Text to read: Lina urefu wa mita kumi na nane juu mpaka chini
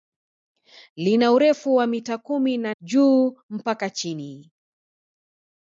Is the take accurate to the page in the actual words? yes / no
no